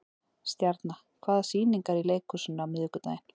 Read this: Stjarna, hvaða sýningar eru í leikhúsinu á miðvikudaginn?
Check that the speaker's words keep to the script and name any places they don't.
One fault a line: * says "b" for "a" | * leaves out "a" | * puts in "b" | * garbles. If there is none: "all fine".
all fine